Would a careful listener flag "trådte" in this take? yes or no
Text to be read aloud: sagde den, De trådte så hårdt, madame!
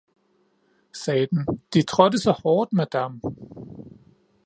no